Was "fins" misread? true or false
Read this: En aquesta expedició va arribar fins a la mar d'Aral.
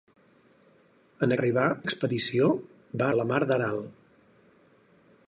true